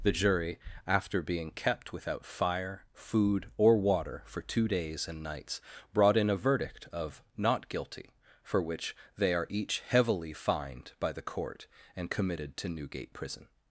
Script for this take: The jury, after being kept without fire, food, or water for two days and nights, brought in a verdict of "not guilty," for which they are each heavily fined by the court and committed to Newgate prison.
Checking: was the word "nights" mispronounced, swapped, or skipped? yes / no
no